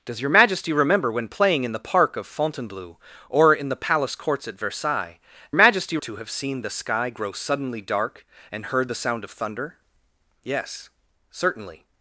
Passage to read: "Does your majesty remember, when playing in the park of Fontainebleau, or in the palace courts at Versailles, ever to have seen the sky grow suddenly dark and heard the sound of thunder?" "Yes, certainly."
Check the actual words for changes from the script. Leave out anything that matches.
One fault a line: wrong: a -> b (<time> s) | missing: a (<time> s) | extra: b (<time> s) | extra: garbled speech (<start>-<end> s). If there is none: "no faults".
wrong: ever -> majesty (5.6 s)